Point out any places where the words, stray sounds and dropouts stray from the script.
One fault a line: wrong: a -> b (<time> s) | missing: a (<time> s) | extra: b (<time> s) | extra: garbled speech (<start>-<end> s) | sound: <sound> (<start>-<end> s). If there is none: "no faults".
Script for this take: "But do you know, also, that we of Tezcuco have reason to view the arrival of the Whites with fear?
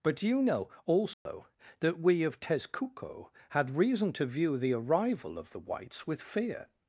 sound: dropout (1.1-1.3 s)
wrong: have -> had (3.5 s)